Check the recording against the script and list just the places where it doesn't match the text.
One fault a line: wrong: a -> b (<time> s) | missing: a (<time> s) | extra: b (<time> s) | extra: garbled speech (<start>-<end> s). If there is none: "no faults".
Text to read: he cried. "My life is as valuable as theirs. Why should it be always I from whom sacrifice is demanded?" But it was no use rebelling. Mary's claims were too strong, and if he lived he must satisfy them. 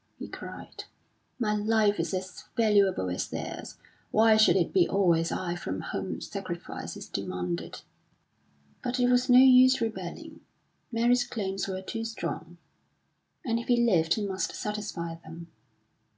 no faults